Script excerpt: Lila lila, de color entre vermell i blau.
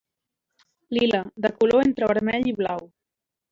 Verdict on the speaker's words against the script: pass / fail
fail